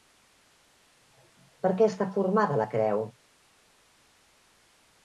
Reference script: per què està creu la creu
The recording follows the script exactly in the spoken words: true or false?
false